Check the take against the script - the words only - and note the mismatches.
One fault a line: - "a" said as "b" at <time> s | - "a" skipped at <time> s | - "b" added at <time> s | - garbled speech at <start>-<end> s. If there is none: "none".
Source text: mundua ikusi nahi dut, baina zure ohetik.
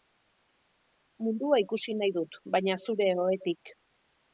none